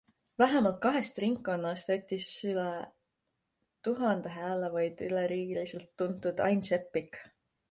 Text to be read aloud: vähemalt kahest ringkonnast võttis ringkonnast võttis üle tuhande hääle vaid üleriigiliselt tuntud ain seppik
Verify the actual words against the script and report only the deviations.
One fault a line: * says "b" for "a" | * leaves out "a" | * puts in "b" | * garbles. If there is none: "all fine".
* leaves out "ringkonnast võttis"